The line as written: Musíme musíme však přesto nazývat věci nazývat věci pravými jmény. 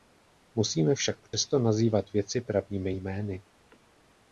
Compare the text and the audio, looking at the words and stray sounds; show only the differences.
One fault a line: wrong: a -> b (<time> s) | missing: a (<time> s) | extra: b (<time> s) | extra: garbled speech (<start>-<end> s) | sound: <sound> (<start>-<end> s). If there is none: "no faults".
missing: musíme (0.9 s)
sound: dropout (1.3-1.3 s)
missing: nazývat věci (2.4 s)